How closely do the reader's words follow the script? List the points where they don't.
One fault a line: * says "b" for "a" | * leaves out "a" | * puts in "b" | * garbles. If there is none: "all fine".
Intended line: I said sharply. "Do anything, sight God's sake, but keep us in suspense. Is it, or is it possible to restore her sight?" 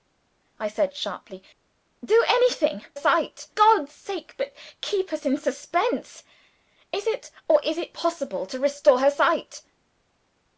all fine